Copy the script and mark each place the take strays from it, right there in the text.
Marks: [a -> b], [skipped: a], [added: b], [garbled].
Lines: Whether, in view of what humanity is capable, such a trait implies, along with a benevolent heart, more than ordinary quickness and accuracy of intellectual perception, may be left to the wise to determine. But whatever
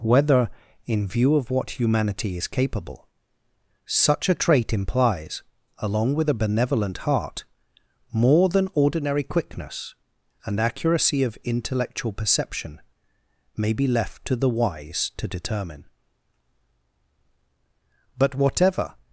Whether, in view of what humanity is capable, such a trait implies, along with a benevolent heart, more than ordinary quickness and accuracy of intellectual perception, may be left to the wise to determine. But whatever